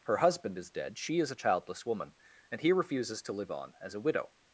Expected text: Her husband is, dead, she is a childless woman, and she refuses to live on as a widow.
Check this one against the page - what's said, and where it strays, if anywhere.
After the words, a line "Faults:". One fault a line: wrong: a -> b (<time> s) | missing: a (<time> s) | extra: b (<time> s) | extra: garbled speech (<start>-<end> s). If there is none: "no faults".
Her husband is, dead, she is a childless woman, and he refuses to live on as a widow.
Faults:
wrong: she -> he (2.6 s)